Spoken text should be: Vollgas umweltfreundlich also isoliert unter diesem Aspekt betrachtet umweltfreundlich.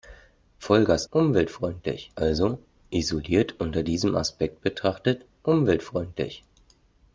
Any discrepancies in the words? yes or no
no